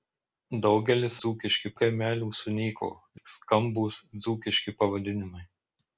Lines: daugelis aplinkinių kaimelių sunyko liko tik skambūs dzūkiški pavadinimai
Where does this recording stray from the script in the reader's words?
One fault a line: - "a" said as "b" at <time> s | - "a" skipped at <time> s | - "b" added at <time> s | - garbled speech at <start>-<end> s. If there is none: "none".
- "aplinkinių" said as "dzūkiški" at 1.2 s
- "liko" skipped at 2.9 s